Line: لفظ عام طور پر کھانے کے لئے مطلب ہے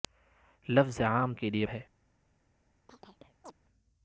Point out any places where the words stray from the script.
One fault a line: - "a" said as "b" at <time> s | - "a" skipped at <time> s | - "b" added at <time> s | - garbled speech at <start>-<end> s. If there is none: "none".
- "طور پر کھانے" skipped at 1.3 s
- "مطلب" skipped at 1.7 s